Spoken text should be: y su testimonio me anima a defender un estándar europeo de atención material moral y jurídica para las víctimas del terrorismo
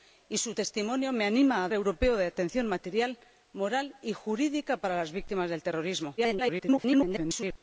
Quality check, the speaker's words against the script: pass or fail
fail